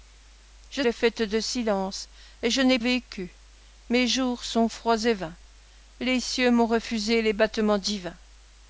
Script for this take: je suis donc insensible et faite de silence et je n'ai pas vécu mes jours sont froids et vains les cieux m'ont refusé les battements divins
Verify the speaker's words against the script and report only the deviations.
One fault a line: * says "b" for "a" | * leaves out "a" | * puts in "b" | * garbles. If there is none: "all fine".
* leaves out "suis donc insensible"
* leaves out "pas"